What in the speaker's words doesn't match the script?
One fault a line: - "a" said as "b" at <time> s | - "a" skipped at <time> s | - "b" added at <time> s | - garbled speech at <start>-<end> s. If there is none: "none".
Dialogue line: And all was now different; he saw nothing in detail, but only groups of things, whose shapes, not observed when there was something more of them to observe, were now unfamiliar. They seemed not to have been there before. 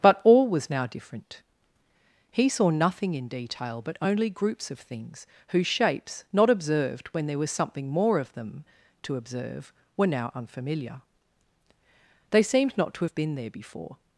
- "And" said as "But" at 0.0 s